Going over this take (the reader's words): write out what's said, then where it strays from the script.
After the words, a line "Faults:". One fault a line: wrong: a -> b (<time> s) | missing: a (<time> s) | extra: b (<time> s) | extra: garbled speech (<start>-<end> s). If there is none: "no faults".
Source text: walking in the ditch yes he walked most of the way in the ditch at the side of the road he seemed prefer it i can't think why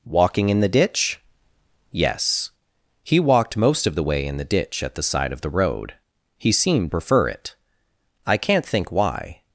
walking in the ditch yes he walked most of the way in the ditch at the side of the road he seemed prefer it i can't think why
Faults:
no faults